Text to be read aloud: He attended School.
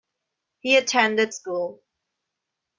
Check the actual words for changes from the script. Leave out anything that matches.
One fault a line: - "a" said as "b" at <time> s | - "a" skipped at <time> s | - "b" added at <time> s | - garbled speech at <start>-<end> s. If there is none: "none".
none